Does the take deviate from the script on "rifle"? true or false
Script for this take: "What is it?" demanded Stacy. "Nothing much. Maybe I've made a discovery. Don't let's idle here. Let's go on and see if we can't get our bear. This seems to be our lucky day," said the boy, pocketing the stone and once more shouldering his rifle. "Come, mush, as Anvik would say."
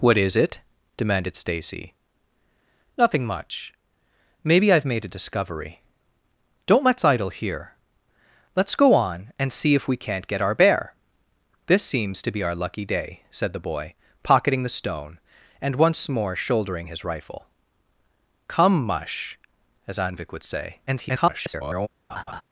false